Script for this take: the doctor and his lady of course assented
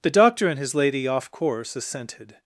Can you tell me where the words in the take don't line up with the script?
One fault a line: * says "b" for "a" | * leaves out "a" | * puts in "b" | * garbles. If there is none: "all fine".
* says "off" for "of"